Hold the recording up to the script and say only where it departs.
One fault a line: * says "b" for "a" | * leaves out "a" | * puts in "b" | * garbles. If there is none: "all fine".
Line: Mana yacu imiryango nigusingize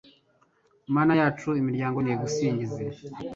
all fine